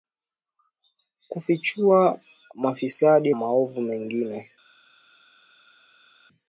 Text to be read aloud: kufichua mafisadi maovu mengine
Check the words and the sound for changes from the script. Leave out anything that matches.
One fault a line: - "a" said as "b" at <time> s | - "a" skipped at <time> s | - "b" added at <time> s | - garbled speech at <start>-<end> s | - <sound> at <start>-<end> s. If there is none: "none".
none